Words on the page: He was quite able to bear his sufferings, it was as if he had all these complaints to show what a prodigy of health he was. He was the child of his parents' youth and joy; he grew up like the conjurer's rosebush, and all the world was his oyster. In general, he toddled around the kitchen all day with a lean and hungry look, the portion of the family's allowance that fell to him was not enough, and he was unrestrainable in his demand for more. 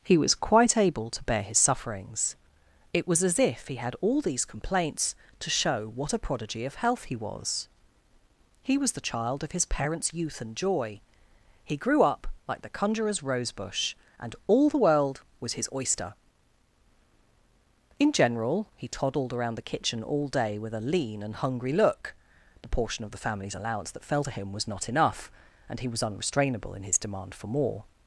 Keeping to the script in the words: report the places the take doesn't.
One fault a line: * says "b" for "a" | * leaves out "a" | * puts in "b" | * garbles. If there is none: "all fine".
all fine